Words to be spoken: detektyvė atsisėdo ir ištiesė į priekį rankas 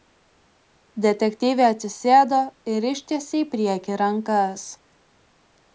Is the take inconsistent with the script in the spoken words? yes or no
no